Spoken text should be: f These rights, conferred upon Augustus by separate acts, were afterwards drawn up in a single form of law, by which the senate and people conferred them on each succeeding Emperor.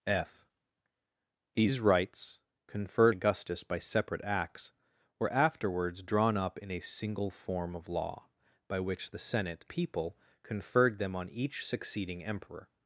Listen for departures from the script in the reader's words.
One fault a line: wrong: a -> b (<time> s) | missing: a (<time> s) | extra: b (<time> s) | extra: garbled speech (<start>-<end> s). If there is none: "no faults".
missing: upon (3.1 s)
missing: and (9.6 s)